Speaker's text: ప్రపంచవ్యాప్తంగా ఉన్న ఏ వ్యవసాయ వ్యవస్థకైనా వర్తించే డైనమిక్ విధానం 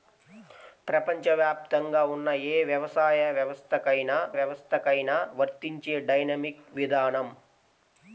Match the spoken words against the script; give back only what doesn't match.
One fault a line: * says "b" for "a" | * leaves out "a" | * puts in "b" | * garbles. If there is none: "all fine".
* puts in "వ్యవస్థకైనా"